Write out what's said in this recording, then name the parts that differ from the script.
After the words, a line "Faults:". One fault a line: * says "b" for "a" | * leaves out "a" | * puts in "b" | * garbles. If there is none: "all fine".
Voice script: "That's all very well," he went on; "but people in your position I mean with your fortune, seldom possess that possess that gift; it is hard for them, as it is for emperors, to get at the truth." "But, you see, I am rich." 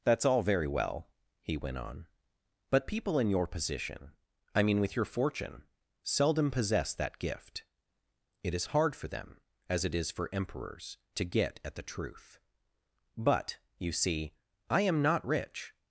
"That's all very well," he went on; "but people in your position I mean with your fortune, seldom possess that gift; it is hard for them, as it is for emperors, to get at the truth." "But, you see, I am not rich."
Faults:
* leaves out "possess that"
* puts in "not"